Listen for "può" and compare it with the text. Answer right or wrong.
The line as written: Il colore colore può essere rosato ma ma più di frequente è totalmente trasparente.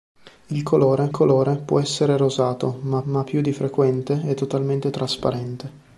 right